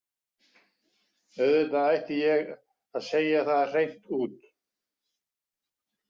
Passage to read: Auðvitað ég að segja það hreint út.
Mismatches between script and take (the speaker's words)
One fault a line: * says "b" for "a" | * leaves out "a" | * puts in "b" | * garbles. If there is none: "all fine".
* puts in "ætti"